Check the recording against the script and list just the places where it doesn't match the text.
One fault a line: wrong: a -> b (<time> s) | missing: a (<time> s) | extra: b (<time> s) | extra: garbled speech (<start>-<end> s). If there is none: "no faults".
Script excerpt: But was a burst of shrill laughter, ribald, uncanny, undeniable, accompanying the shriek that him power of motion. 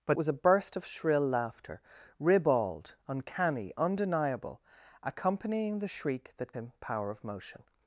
no faults